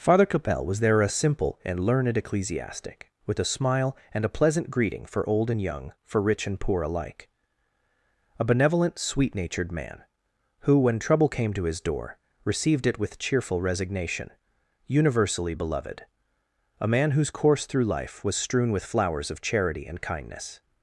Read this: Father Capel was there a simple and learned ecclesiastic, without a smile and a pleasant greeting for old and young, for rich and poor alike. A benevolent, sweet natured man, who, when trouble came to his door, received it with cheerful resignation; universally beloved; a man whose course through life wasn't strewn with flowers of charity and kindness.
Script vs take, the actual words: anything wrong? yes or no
yes